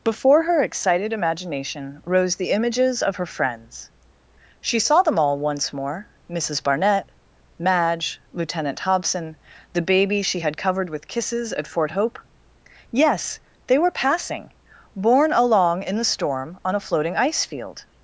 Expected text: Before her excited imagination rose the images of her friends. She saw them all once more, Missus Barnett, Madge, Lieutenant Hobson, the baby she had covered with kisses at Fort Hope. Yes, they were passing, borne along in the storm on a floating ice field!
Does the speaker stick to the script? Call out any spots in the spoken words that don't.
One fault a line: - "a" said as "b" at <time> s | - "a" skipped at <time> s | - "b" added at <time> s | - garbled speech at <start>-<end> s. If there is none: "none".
none